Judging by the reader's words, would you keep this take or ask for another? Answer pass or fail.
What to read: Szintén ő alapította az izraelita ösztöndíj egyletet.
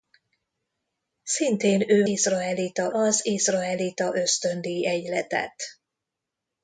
fail